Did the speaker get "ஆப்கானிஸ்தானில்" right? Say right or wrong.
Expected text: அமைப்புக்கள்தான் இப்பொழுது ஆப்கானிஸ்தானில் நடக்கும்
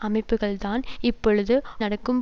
wrong